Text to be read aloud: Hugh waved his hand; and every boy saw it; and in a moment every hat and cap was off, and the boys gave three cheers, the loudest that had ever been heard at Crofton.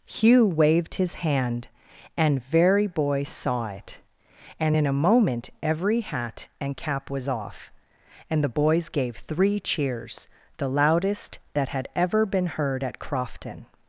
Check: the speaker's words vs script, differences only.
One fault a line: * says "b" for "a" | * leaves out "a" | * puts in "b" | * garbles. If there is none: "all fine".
* says "very" for "every"